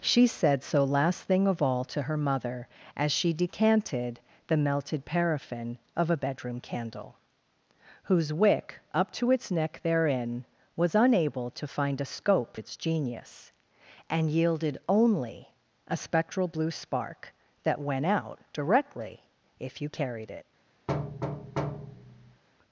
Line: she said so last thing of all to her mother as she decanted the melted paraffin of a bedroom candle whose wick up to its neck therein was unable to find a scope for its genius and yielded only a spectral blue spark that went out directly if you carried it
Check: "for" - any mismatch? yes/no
yes